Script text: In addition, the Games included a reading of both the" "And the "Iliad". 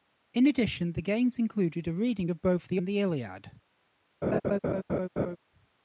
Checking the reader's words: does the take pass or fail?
pass